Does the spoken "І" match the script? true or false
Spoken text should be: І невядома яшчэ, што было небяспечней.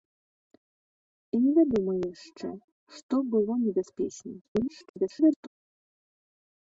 true